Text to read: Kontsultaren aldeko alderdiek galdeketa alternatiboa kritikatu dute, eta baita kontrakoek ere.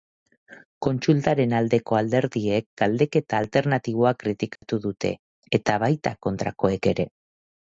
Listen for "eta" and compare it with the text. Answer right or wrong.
right